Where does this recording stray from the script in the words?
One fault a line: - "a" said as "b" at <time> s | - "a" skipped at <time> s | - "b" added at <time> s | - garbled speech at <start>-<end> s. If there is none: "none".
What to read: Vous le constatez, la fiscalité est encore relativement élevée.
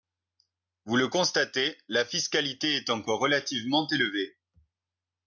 none